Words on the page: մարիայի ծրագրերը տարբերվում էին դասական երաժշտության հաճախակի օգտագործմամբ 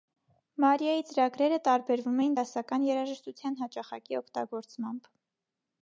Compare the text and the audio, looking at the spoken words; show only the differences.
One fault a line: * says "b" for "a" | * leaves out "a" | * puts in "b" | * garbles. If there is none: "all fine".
all fine